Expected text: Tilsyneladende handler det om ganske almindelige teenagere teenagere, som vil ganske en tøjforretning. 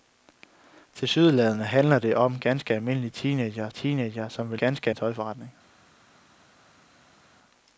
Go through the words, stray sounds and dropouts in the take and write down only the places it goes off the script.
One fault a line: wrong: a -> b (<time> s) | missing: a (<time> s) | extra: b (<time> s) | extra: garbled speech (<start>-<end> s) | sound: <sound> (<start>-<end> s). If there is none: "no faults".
no faults